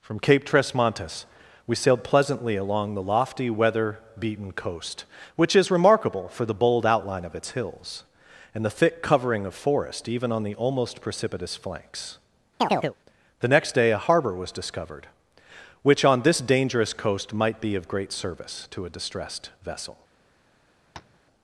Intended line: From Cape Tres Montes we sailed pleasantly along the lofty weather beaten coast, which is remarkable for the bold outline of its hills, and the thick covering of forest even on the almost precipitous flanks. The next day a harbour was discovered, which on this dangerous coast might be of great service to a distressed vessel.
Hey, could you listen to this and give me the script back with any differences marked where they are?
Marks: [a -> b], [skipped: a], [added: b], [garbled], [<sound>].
From Cape Tres Montes we sailed pleasantly along the lofty weather beaten coast, which is remarkable for the bold outline of its hills, and the thick covering of forest even on the almost precipitous flanks. [chirp] The next day a harbour was discovered, which on this dangerous coast might be of great service to a distressed vessel. [tap]